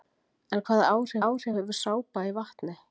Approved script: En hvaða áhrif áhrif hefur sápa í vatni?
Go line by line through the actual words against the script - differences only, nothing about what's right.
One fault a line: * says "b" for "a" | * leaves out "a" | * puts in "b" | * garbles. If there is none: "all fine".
all fine